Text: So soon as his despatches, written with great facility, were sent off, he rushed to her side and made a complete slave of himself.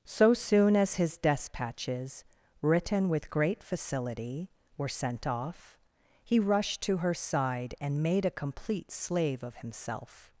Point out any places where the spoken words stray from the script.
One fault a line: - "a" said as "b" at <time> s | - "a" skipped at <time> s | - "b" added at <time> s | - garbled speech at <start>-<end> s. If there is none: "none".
none